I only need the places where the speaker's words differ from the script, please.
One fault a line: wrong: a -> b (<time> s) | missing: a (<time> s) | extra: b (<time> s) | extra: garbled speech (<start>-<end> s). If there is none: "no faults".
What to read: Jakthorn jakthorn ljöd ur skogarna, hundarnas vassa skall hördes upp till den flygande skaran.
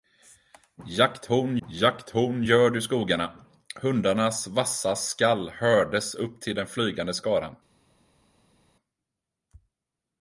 no faults